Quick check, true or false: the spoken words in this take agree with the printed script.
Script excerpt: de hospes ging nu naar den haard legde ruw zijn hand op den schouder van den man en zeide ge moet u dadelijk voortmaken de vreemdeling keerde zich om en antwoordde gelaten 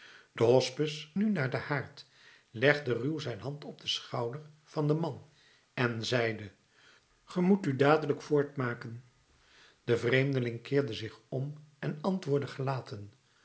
false